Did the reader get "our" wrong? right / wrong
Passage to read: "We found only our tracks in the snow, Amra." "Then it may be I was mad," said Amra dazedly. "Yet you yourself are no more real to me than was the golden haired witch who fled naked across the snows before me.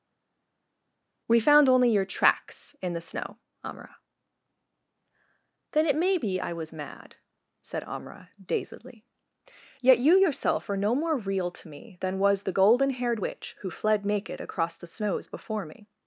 wrong